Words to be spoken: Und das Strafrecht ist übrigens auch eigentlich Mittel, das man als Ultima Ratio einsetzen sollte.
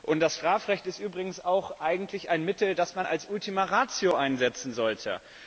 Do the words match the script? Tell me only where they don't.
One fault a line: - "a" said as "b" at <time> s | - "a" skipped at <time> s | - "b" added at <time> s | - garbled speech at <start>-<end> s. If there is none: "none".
- "ein" added at 2.3 s